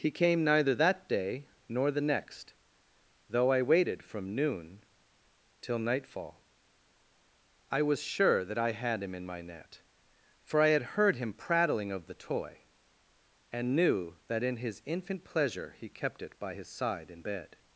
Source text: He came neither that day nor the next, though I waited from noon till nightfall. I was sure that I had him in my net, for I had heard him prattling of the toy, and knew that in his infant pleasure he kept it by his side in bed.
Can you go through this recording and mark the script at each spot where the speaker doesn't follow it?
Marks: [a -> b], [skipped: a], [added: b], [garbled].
He came neither that day nor the next, though I waited from noon till nightfall. I was sure that I had him in my net, for I had heard him prattling of the toy, and knew that in his infant pleasure he kept it by his side in bed.